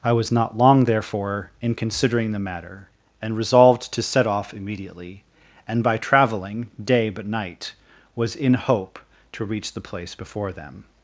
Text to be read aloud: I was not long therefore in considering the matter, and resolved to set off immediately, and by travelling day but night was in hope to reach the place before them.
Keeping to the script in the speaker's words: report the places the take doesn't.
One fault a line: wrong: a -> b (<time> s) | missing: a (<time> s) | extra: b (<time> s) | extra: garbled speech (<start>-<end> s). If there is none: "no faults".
no faults